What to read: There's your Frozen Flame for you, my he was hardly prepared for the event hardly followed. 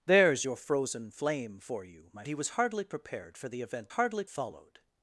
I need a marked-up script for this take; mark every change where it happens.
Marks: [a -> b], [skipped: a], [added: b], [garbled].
There's your Frozen Flame for you, my he was hardly prepared for the event hardly followed.